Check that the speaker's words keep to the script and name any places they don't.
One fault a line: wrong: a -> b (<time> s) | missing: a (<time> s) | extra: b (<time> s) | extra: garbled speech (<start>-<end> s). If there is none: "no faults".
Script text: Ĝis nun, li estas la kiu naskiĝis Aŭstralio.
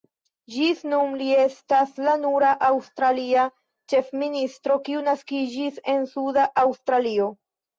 extra: nura aŭstralia ĉefministro (2.2 s)
extra: en Suda (6.0 s)